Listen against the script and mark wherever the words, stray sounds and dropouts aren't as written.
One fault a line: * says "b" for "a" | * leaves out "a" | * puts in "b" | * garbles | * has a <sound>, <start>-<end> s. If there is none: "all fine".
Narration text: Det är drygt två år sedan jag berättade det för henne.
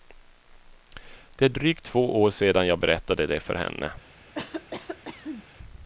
* has a cough, 4.3-5.5 s